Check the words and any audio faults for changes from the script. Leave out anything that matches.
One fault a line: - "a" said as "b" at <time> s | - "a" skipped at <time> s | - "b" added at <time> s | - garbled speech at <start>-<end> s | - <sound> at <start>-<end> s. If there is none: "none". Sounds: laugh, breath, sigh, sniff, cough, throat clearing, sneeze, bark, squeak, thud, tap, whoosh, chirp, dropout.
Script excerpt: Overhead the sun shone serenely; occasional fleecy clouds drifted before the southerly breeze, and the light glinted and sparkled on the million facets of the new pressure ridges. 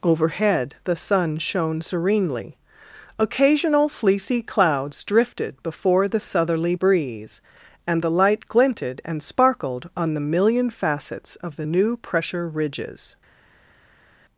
none